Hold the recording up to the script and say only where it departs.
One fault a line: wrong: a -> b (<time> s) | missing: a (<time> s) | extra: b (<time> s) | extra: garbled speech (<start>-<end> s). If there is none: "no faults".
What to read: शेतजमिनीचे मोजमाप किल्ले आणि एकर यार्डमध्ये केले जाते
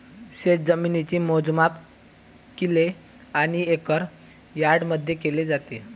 no faults